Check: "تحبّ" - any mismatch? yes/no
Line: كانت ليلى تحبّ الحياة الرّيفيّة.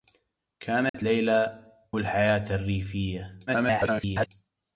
yes